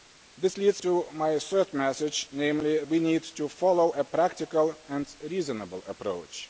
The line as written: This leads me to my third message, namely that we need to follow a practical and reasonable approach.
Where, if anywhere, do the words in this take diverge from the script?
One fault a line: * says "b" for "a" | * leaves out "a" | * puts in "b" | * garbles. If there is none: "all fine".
* leaves out "me"
* leaves out "that"